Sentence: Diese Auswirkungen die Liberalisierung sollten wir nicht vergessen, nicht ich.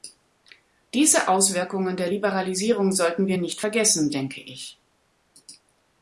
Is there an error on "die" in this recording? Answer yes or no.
yes